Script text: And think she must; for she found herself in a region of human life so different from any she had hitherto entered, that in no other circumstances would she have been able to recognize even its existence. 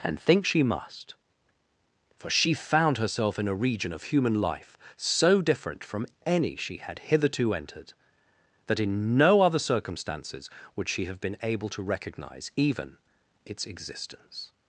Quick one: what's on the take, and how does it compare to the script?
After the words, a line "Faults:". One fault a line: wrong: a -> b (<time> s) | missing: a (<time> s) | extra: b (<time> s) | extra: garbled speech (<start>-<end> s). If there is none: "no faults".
And think she must; for she found herself in a region of human life so different from any she had hitherto entered, that in no other circumstances would she have been able to recognize even its existence.
Faults:
no faults